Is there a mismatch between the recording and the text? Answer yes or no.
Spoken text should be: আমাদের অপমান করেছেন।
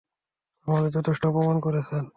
yes